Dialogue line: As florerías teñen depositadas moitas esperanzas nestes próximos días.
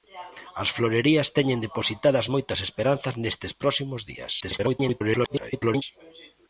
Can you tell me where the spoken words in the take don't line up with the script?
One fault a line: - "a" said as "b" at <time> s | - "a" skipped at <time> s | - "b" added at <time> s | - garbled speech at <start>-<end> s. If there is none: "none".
- garbled speech at 4.4-5.8 s